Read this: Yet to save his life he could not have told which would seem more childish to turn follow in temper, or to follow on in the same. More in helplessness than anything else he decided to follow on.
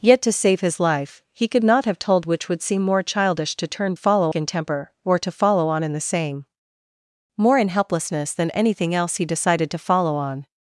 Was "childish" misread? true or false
false